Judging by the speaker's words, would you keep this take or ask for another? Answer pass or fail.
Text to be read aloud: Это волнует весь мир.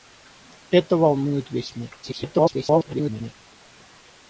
fail